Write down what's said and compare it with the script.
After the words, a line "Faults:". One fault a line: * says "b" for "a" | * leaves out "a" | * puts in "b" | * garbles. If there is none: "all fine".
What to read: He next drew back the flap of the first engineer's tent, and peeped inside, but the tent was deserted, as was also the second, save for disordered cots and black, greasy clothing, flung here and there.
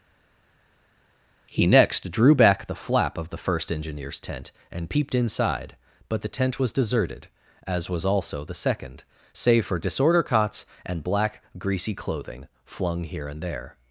He next drew back the flap of the first engineer's tent, and peeped inside, but the tent was deserted, as was also the second, save for disorder cots and black, greasy clothing, flung here and there.
Faults:
* says "disorder" for "disordered"